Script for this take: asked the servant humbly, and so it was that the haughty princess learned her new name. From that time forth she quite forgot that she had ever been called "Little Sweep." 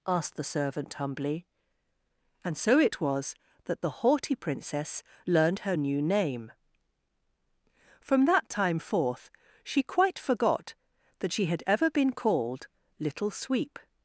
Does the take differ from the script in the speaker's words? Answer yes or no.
no